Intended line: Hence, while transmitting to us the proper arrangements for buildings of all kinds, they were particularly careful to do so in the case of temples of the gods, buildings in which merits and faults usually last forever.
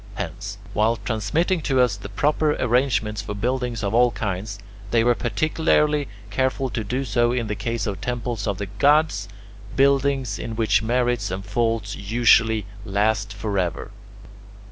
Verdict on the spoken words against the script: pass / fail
pass